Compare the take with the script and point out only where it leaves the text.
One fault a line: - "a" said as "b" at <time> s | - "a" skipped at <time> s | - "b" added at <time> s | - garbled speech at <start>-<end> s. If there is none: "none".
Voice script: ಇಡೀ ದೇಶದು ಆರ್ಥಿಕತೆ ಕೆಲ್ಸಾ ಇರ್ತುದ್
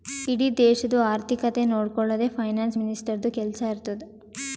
- "ನೊಡ್ಕೊಳದೆ ಫೈನಾನ್ಸ್ ಮಿನಿಸ್ಟರ್ದು" added at 1.6 s